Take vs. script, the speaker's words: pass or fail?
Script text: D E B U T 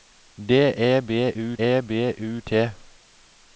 fail